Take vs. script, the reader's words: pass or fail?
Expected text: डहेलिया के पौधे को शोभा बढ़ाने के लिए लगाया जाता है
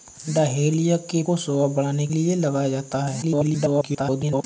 fail